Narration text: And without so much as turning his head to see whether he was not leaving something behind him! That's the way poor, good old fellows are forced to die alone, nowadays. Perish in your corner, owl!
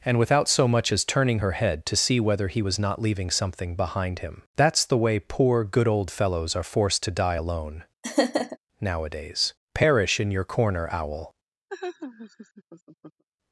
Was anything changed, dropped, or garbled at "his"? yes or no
yes